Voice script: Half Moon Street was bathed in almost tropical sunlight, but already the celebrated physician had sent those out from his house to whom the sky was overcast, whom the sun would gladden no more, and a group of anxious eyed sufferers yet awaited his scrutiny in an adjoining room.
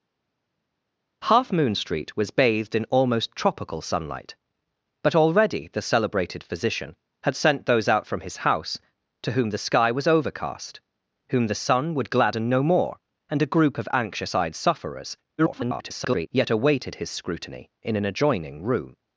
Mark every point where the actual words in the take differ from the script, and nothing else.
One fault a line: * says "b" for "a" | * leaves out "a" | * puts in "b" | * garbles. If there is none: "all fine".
* garbles